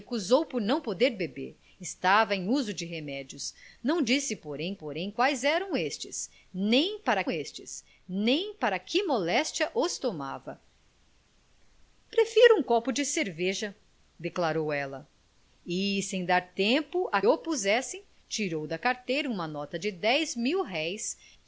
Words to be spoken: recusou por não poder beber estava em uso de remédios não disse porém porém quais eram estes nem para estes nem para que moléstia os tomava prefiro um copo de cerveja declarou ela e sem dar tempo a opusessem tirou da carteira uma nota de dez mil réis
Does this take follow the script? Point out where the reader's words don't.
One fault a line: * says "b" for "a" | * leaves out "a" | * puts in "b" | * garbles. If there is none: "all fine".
all fine